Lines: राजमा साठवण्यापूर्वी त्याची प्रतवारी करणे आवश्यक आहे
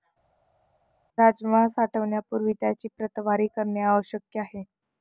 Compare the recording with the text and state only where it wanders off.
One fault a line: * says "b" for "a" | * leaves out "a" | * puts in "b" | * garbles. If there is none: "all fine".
all fine